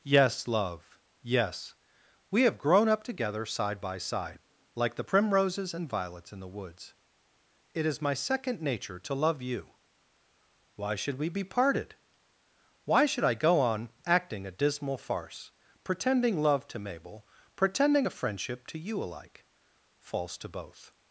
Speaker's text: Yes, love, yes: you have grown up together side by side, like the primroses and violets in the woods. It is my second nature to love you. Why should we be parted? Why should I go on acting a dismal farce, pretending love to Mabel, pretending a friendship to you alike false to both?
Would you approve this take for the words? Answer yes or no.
no